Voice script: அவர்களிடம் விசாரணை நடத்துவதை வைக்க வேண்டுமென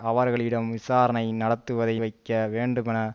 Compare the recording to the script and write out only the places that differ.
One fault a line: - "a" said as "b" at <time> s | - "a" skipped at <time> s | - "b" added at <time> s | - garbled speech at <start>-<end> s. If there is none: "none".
none